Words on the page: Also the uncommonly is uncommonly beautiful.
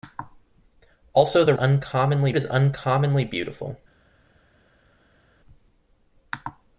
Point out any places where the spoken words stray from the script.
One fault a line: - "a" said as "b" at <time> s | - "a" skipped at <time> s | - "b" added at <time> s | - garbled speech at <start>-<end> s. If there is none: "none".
none